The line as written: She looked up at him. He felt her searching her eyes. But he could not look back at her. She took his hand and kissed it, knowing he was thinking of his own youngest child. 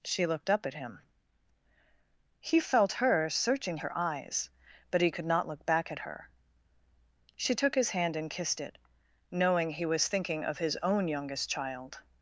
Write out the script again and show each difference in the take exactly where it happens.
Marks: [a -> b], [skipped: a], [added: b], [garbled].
She looked up at him. He felt her searching her eyes. But he could not look back at her. She took his hand and kissed it, knowing he was thinking of his own youngest child.